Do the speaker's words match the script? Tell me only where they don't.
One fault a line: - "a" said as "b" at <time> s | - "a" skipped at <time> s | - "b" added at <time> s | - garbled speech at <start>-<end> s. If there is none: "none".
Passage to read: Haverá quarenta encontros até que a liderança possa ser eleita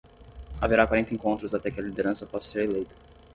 none